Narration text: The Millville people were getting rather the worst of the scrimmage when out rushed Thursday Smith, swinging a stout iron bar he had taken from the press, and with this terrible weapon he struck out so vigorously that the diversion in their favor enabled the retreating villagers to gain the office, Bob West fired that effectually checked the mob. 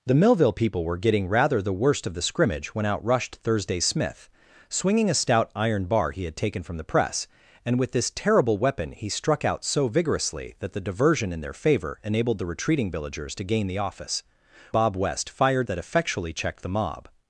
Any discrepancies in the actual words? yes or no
no